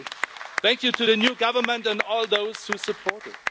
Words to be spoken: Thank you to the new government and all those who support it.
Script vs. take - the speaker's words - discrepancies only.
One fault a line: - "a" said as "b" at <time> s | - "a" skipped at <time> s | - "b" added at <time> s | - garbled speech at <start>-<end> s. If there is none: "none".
none